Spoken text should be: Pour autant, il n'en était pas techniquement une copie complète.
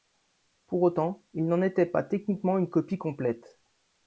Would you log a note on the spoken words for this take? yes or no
no